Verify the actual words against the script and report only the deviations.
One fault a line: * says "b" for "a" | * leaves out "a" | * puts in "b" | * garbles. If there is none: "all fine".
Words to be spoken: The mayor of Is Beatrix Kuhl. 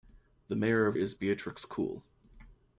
all fine